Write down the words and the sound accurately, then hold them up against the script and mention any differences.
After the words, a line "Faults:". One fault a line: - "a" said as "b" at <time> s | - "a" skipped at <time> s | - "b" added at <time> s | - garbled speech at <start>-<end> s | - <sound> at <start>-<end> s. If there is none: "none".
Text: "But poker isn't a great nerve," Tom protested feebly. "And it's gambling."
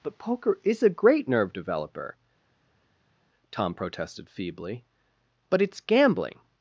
"But poker is a great nerve developer," Tom protested feebly. "But it's gambling."
Faults:
- "isn't" said as "is" at 0.6 s
- "developer" added at 1.5 s
- "And" said as "But" at 5.5 s